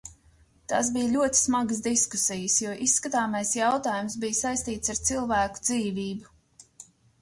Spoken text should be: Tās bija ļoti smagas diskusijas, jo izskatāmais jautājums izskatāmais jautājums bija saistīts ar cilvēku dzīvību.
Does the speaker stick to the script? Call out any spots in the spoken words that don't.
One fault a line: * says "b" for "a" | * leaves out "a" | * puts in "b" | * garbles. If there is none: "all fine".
* leaves out "izskatāmais jautājums"